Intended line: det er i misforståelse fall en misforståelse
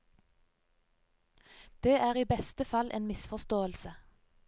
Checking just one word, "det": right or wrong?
right